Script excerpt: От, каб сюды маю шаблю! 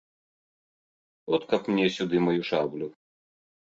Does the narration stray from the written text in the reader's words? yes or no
yes